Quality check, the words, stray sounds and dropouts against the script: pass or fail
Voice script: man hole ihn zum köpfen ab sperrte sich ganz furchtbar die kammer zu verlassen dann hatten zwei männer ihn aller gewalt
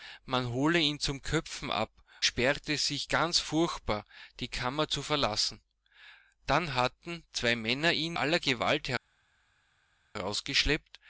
pass